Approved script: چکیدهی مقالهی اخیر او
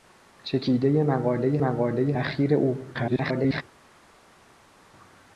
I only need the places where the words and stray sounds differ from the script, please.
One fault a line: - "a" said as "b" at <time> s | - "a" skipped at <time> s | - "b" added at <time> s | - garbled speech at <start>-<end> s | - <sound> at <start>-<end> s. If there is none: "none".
- "مقالهی" added at 1.6 s
- garbled speech at 2.9-3.6 s